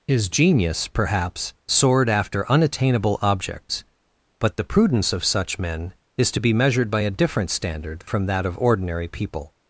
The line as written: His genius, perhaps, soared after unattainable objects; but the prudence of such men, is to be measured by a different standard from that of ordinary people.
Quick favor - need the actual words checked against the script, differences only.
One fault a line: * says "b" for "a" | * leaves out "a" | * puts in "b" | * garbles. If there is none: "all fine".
all fine